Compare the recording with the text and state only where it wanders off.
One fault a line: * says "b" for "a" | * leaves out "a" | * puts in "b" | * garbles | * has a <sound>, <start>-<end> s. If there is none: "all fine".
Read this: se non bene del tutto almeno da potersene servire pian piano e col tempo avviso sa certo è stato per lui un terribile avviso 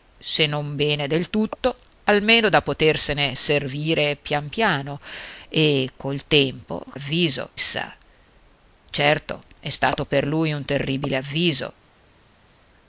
all fine